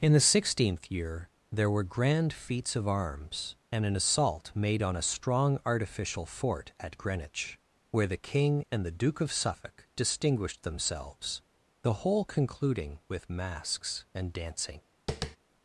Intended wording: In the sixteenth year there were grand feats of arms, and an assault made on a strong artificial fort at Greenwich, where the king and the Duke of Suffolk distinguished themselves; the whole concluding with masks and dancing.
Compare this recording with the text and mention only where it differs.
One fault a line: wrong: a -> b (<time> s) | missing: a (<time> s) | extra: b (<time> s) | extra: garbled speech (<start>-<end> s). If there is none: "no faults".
no faults